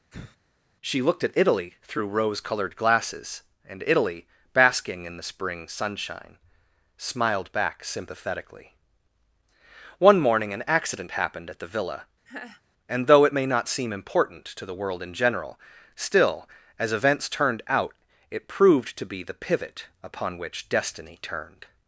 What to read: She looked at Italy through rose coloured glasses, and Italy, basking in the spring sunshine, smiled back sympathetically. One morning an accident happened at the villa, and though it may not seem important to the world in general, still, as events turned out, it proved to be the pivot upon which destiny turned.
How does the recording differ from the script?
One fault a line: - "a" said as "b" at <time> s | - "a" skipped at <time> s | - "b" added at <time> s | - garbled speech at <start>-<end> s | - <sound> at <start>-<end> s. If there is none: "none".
- sigh at 0.1-0.4 s
- laugh at 12.3-12.6 s